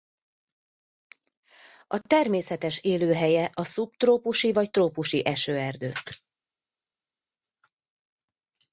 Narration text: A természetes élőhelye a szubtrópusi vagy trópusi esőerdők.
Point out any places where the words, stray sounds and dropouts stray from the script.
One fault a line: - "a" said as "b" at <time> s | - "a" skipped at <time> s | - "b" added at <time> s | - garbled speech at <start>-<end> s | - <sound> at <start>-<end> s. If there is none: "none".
none